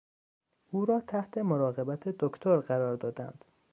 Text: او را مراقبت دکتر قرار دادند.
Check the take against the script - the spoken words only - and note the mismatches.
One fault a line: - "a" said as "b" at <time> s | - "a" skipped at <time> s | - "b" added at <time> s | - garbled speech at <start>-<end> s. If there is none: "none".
- "تحت" added at 1.0 s